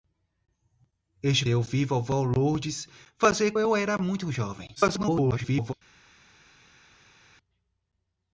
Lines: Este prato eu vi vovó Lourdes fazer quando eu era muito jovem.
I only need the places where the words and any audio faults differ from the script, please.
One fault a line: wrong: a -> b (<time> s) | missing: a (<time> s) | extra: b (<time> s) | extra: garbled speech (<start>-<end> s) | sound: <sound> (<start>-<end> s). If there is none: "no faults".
missing: prato (1.4 s)
missing: quando (3.5 s)
extra: garbled speech (4.8-5.7 s)